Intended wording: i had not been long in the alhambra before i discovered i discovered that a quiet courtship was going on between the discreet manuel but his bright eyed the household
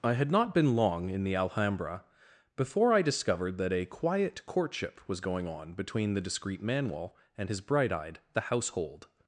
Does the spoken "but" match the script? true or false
false